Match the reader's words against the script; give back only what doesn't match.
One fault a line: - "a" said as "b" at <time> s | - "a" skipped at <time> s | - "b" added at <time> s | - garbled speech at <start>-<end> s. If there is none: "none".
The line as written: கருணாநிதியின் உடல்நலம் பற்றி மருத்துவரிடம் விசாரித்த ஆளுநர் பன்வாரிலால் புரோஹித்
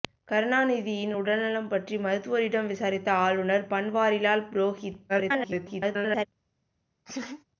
- garbled speech at 5.1-6.3 s